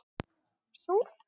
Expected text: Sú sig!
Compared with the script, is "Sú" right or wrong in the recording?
right